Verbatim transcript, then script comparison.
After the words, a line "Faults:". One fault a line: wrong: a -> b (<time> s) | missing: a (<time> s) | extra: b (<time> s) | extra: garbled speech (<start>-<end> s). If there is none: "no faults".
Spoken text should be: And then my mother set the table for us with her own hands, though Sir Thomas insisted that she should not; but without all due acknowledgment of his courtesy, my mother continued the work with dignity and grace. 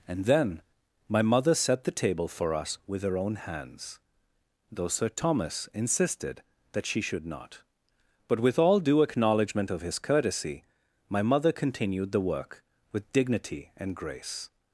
And then my mother set the table for us with her own hands, though Sir Thomas insisted that she should not; but with all due acknowledgment of his courtesy, my mother continued the work with dignity and grace.
Faults:
wrong: without -> with (8.4 s)